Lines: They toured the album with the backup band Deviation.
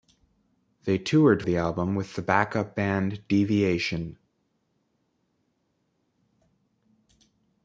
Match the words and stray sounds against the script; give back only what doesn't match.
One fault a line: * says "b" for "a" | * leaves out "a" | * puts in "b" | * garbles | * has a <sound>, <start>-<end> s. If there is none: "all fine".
all fine